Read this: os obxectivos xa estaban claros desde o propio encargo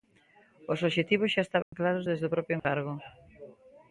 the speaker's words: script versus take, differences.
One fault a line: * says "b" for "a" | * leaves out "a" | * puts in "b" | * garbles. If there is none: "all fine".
all fine